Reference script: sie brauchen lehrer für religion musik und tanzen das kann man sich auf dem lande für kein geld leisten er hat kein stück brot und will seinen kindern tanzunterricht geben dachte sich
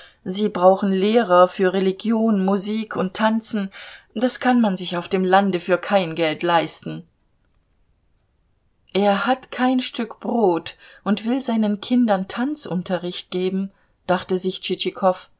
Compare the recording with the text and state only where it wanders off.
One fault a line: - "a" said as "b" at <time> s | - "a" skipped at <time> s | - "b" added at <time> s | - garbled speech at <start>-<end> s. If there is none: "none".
none